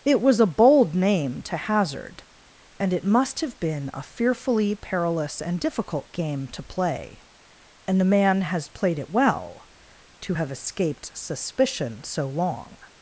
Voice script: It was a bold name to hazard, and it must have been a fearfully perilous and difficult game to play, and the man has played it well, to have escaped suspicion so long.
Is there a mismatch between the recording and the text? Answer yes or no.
no